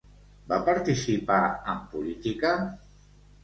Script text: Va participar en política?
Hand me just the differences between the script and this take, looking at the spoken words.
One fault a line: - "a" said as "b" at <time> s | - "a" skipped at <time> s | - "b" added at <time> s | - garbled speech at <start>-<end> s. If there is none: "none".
none